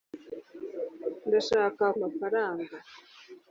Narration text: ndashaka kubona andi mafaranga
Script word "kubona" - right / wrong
wrong